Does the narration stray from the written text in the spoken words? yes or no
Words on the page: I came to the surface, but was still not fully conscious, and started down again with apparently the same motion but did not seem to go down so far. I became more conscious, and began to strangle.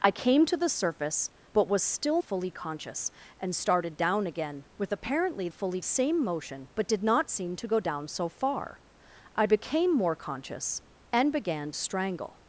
yes